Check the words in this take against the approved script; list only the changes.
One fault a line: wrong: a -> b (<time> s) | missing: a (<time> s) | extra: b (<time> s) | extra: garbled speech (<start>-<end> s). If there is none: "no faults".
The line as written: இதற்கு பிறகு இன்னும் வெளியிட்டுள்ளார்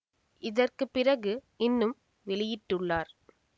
no faults